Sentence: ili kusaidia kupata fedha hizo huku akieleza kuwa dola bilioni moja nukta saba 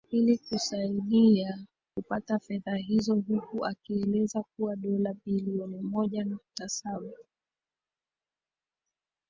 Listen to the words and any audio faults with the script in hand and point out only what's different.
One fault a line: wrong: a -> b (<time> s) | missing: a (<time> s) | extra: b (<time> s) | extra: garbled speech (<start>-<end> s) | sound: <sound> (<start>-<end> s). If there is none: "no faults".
no faults